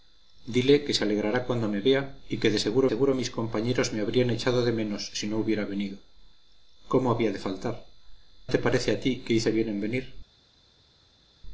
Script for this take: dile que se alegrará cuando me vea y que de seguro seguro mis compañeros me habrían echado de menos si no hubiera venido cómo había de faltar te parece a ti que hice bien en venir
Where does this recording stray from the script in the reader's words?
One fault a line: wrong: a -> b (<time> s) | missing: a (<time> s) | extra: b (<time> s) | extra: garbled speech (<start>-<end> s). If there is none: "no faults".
no faults